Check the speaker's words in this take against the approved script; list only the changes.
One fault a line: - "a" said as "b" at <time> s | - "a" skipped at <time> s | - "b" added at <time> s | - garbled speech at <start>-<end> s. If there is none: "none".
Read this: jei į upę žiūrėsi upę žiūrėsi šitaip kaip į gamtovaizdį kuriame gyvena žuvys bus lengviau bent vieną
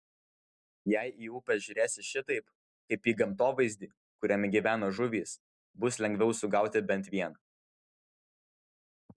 - "upę žiūrėsi" skipped at 2.0 s
- "sugauti" added at 6.4 s